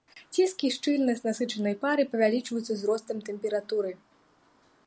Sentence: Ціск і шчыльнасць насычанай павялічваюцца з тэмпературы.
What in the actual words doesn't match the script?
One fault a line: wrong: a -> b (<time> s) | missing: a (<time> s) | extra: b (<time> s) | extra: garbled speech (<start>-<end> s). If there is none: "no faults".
extra: пары (1.8 s)
extra: ростам (2.9 s)